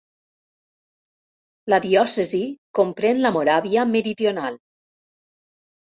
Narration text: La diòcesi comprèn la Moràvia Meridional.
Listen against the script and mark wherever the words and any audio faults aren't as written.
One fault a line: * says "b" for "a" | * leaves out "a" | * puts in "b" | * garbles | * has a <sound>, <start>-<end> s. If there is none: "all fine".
all fine